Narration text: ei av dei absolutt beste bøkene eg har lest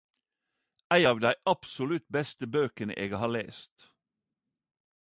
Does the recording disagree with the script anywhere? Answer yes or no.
no